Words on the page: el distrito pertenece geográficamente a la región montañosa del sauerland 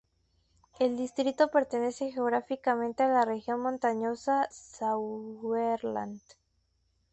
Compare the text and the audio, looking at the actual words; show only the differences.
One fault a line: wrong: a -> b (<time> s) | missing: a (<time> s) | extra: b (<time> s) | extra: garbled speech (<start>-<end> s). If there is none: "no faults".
missing: del (4.5 s)